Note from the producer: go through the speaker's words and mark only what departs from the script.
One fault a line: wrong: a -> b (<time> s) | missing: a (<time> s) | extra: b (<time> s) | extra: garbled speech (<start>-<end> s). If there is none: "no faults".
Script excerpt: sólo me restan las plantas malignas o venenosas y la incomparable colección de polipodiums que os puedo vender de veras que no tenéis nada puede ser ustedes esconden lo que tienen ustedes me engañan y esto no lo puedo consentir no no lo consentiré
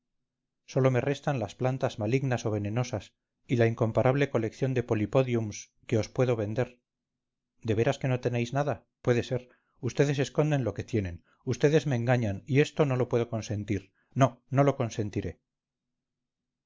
no faults